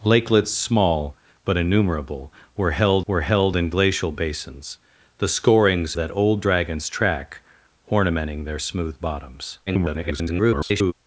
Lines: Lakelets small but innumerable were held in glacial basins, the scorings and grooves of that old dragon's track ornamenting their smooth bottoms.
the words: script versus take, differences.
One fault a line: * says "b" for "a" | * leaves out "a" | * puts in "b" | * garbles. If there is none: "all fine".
* puts in "were held"
* leaves out "and grooves of"
* garbles